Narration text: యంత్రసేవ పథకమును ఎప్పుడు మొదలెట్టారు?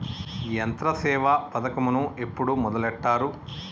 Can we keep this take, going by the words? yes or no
yes